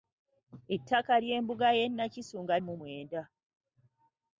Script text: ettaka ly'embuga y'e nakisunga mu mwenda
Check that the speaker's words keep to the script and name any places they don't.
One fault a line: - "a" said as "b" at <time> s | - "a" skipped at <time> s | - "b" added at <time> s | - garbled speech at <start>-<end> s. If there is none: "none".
none